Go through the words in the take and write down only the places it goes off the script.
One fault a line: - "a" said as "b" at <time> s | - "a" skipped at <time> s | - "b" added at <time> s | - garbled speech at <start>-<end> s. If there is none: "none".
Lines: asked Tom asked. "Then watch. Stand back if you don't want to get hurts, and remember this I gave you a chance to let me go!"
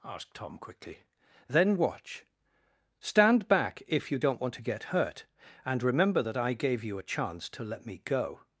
- "asked" said as "quickly" at 0.6 s
- "hurts" said as "hurt" at 4.8 s
- "this" said as "that" at 6.2 s